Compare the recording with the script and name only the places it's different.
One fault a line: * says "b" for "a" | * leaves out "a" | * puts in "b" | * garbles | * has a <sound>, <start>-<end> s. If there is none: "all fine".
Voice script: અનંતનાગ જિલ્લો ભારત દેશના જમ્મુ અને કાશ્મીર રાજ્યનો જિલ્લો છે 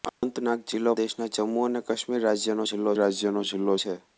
* has a dropout, 0.1-0.2 s
* leaves out "ભારત"
* puts in "રાજ્યનો જિલ્લો"